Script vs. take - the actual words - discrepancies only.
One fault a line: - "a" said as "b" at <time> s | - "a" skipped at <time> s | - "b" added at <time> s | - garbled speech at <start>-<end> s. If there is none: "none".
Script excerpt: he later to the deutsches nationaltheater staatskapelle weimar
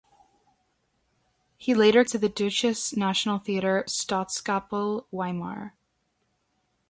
none